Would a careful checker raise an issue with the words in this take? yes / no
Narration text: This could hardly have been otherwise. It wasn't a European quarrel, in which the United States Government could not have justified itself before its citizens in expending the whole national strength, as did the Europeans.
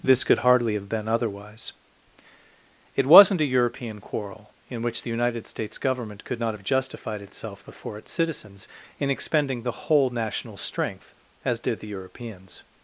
no